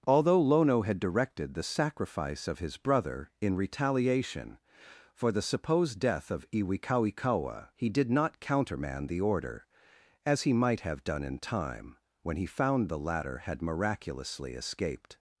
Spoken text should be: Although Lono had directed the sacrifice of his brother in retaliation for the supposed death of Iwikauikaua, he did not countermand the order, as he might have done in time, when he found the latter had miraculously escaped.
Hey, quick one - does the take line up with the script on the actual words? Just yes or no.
yes